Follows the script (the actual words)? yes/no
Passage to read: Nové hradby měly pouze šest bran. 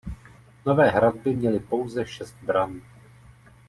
yes